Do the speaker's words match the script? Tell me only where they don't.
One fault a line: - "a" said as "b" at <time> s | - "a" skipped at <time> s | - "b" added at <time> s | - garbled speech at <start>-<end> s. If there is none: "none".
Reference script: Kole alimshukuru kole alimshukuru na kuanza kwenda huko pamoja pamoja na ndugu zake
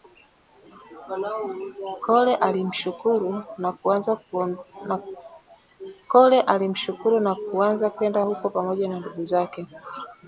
- "kole alimshukuru" skipped at 3.4 s
- "pamoja" skipped at 8.9 s